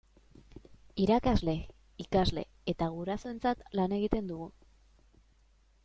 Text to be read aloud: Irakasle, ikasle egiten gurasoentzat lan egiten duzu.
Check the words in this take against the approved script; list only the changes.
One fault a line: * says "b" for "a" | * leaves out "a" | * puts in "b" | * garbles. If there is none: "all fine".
* says "eta" for "egiten"
* says "dugu" for "duzu"